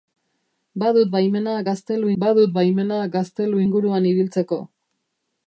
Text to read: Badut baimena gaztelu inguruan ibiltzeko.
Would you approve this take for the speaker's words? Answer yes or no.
no